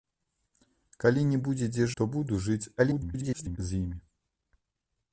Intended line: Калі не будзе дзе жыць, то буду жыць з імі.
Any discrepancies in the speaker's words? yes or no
yes